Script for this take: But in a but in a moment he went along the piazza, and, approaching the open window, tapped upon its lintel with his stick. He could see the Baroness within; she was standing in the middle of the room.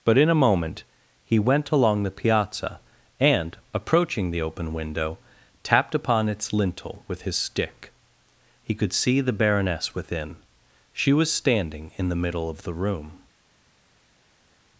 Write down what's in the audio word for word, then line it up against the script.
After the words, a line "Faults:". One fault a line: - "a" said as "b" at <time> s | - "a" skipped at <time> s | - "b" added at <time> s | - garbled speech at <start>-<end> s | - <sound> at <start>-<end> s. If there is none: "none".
But in a moment he went along the piazza, and, approaching the open window, tapped upon its lintel with his stick. He could see the Baroness within; she was standing in the middle of the room.
Faults:
- "but in a" skipped at 0.4 s